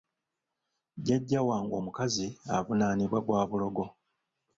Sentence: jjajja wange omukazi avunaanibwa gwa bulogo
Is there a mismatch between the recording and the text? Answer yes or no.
no